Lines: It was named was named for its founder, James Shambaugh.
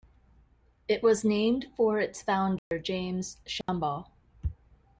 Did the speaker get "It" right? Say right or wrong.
right